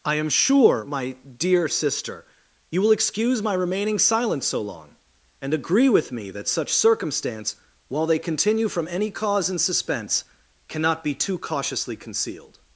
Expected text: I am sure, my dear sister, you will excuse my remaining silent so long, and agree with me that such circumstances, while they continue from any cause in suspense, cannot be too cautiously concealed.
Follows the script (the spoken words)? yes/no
no